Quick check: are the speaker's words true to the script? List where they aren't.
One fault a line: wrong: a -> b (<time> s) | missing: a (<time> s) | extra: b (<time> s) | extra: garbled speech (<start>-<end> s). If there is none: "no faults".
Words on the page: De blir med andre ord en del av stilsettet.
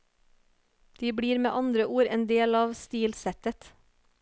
no faults